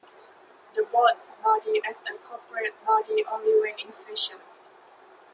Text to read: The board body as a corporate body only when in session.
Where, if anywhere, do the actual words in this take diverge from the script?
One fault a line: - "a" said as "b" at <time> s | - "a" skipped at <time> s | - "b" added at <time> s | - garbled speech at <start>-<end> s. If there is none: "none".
none